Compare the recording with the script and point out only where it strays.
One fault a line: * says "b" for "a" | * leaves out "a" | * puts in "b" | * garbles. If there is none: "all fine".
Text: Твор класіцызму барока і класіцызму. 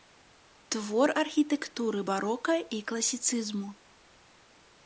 * says "архітэктуры" for "класіцызму"